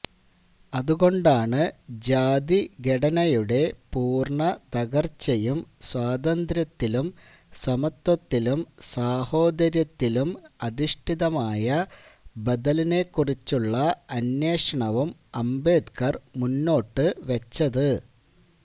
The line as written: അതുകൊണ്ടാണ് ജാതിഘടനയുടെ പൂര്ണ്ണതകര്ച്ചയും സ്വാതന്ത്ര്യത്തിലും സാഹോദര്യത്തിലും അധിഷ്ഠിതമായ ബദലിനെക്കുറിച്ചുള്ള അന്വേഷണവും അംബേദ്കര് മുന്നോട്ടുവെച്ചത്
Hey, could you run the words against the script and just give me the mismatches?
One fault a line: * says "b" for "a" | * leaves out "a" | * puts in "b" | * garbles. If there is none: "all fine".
* puts in "സമത്വത്തിലും"